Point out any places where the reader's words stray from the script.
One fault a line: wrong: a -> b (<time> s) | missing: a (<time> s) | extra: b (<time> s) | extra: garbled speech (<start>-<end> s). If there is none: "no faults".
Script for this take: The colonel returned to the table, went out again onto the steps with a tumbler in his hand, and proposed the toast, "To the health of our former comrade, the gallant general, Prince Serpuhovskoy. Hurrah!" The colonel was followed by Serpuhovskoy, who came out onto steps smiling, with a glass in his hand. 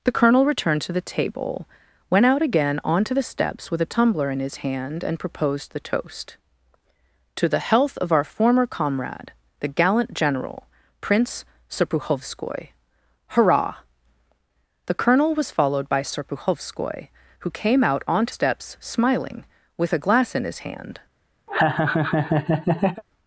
no faults